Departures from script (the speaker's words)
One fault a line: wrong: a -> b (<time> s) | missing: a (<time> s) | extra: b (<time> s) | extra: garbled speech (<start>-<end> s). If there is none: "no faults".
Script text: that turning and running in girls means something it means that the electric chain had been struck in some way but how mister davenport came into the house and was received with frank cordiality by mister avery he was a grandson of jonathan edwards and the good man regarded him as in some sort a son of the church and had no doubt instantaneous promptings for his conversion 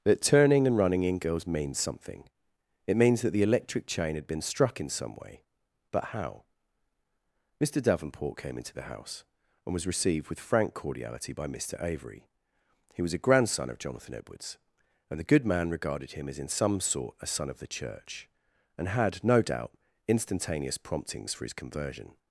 no faults